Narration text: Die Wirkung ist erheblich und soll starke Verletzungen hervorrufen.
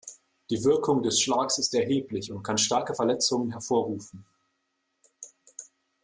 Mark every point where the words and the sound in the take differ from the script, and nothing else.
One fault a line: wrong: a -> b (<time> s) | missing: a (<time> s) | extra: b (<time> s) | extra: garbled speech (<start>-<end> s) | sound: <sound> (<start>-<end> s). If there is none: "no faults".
extra: des Schlags (1.0 s)
wrong: soll -> kann (2.4 s)